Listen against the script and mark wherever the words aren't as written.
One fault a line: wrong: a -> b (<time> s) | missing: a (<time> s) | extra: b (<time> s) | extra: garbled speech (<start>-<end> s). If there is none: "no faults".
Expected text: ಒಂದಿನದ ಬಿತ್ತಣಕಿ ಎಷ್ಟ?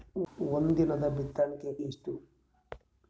no faults